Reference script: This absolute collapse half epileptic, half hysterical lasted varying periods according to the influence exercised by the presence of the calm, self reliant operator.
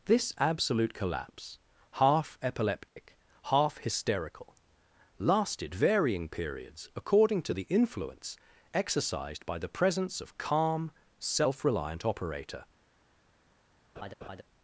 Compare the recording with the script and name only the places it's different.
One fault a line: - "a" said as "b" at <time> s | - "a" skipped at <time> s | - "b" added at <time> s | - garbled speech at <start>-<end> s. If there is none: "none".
- "the" skipped at 10.4 s